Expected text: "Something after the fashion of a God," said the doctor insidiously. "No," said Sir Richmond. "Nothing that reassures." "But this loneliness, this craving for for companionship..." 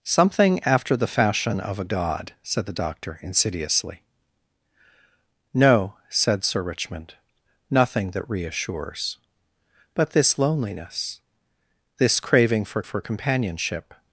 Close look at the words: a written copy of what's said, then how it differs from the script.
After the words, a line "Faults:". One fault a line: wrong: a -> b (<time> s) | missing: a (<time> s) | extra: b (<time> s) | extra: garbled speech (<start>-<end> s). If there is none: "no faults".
"Something after the fashion of a God," said the doctor insidiously. "No," said Sir Richmond. "Nothing that reassures." "But this loneliness, this craving for for companionship..."
Faults:
no faults